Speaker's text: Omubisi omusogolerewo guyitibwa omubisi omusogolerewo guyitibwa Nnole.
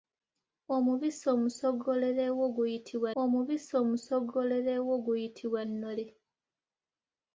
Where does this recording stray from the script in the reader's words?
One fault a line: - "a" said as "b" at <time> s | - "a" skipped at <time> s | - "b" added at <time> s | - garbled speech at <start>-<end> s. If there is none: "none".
none